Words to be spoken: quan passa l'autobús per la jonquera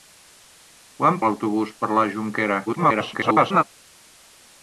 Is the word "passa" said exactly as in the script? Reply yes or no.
no